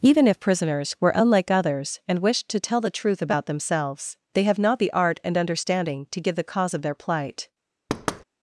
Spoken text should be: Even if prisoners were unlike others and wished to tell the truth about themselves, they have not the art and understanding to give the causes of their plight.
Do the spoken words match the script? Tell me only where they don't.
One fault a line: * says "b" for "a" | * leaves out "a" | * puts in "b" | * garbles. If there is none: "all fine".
* says "cause" for "causes"